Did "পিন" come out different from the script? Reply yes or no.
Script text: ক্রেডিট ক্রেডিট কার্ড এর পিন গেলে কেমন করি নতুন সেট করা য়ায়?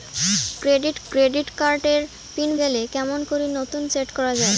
no